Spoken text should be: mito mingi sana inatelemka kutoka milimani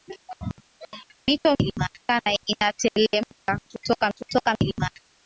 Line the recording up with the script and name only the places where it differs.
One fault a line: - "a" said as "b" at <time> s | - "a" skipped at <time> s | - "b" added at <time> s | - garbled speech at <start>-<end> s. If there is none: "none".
- "mingi" said as "milimani" at 1.6 s
- "kutoka" added at 4.2 s